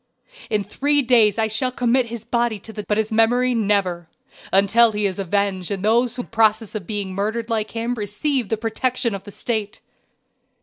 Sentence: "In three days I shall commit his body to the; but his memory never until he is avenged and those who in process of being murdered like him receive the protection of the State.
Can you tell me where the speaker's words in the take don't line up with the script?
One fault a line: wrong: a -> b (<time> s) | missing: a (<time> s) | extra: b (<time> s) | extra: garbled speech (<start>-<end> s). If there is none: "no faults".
no faults